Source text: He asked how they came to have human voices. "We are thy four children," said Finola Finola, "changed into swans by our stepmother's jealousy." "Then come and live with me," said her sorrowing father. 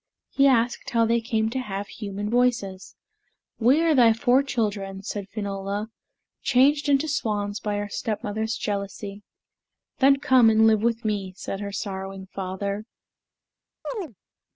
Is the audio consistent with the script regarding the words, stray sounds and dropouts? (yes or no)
no